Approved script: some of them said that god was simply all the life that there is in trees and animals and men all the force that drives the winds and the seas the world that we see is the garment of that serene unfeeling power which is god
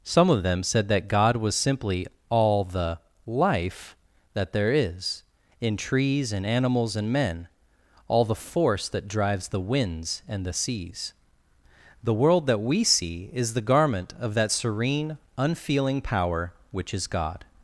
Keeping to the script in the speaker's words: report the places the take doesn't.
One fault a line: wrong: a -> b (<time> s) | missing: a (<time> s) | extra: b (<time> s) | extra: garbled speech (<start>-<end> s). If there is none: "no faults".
no faults